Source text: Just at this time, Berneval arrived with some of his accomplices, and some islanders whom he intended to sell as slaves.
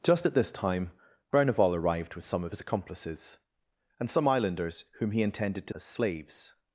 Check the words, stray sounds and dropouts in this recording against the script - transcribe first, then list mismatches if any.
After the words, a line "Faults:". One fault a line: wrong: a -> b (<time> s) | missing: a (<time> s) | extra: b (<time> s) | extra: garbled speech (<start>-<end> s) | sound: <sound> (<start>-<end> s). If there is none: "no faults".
Just at this time, Berneval arrived with some of his accomplices, and some islanders whom he intended to as slaves.
Faults:
missing: sell (5.7 s)